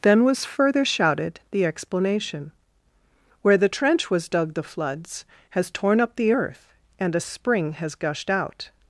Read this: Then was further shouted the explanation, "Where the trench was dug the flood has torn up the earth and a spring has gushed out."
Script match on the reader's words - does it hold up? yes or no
no